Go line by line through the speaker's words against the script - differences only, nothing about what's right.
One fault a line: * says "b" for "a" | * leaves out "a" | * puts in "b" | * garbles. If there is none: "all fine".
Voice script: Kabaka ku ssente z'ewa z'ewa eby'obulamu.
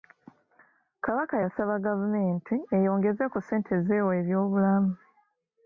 * puts in "yasaba gavumenti eyongeze"
* leaves out "z'ewa"